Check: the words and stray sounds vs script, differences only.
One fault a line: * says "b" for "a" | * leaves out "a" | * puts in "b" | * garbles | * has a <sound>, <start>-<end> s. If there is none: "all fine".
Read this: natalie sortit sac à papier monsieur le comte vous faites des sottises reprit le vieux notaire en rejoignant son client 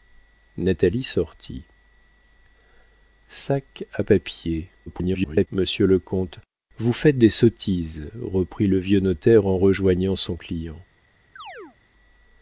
* garbles
* has a chirp, 11.4-11.8 s